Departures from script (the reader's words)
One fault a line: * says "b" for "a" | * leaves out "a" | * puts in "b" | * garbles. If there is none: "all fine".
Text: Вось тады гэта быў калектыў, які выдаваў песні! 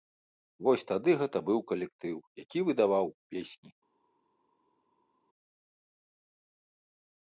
all fine